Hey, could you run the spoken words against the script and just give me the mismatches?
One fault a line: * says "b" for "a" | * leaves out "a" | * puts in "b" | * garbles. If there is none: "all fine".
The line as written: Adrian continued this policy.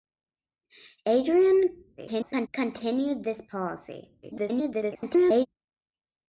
* garbles
* garbles